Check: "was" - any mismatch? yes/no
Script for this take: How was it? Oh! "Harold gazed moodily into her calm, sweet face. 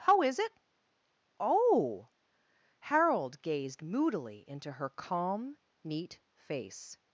yes